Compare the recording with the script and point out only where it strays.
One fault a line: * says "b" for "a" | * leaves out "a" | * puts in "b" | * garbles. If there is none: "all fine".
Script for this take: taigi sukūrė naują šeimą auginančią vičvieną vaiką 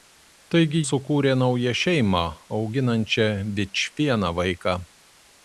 all fine